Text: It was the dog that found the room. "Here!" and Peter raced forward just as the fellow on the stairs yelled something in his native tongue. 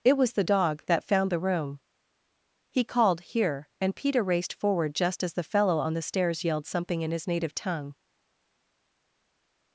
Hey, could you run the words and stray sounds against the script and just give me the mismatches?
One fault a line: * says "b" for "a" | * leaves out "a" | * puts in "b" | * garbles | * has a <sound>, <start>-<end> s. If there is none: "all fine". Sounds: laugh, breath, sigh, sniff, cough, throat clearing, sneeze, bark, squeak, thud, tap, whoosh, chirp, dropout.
* puts in "He called"